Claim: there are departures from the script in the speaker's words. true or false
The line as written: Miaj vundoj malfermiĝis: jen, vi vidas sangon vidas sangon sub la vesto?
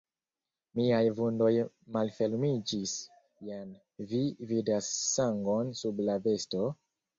true